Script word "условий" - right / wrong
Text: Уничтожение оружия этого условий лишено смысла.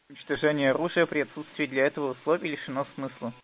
right